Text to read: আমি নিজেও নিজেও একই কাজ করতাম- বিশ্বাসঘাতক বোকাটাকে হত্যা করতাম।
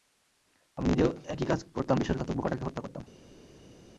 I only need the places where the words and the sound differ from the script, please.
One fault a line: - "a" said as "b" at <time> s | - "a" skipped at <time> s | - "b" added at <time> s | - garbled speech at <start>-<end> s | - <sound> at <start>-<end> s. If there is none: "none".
- "নিজেও" skipped at 1.1 s